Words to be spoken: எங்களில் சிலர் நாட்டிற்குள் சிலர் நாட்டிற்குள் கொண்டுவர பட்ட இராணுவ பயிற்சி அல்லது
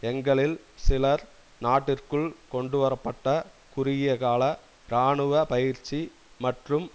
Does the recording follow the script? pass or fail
fail